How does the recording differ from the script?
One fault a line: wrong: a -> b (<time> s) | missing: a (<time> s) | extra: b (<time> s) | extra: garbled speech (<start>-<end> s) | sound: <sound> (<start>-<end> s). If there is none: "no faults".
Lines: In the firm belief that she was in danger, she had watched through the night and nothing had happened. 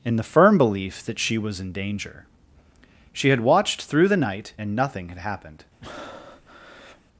sound: breath (5.8-7.0 s)